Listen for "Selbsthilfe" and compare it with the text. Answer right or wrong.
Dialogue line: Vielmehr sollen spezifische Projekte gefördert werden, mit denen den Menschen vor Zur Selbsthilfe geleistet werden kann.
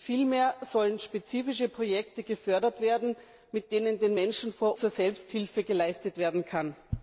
right